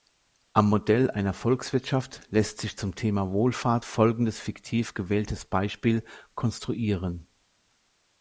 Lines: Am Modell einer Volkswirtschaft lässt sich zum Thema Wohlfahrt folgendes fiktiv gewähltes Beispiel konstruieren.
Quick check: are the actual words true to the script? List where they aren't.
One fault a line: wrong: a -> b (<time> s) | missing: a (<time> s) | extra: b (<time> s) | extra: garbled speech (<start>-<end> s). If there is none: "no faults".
no faults